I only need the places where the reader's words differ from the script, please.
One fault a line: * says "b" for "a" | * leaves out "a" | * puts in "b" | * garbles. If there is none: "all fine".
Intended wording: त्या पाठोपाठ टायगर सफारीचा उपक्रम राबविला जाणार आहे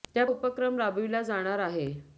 * leaves out "पाठोपाठ टायगर सफारीचा"